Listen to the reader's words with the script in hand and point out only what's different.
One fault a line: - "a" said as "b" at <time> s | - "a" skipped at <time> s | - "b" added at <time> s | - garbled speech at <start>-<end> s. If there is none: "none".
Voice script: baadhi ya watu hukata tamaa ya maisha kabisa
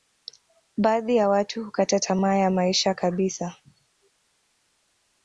none